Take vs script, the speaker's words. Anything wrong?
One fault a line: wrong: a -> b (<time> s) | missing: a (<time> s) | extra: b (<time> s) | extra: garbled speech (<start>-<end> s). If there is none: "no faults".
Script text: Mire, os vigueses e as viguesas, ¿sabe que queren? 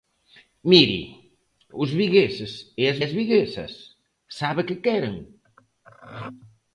extra: as (3.0 s)